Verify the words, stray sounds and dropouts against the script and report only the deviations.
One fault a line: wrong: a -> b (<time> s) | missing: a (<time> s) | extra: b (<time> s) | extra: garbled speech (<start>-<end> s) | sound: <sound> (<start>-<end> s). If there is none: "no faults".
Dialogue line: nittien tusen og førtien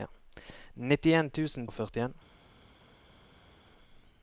no faults